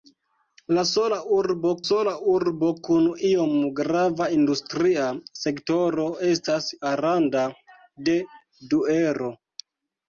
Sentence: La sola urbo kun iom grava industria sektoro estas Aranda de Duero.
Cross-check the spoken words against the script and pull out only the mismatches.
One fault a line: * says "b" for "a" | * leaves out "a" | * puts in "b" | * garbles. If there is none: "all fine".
* puts in "sola urbo"